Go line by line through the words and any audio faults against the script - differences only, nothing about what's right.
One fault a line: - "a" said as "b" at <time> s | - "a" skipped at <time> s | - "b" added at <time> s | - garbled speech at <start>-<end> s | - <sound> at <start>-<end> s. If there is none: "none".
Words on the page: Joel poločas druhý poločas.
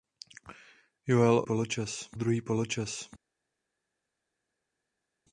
none